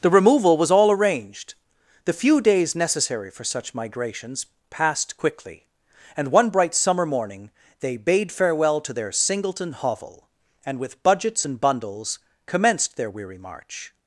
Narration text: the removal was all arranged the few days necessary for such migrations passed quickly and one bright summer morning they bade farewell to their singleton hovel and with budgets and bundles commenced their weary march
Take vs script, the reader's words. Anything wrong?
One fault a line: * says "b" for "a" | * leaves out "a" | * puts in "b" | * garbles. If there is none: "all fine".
all fine